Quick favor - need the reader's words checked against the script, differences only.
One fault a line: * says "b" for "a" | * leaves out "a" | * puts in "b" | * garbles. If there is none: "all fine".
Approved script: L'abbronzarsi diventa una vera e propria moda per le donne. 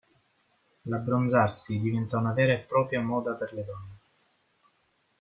all fine